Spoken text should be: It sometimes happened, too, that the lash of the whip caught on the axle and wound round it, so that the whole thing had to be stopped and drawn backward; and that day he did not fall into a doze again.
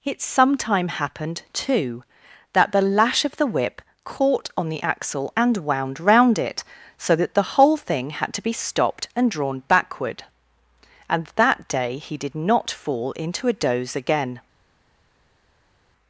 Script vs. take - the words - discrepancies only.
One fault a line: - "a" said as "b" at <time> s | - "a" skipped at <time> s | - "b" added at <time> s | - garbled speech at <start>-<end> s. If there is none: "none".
- "sometimes" said as "sometime" at 0.2 s